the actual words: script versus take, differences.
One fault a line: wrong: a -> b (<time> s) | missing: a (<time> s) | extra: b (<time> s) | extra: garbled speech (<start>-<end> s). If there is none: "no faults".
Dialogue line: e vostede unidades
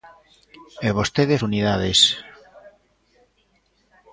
no faults